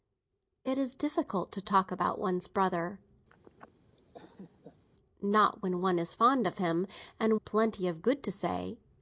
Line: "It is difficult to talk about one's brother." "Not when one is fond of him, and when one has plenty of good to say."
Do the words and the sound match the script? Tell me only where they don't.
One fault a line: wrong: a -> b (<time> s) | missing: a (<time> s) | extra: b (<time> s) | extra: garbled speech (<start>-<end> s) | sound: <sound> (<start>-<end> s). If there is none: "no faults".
sound: laugh (3.3-4.9 s)
missing: when one has (7.4 s)